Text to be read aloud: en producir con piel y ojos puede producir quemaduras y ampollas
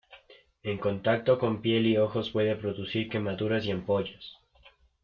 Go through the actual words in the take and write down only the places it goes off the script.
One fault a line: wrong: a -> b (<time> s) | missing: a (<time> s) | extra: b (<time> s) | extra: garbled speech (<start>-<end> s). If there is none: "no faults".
wrong: producir -> contacto (0.8 s)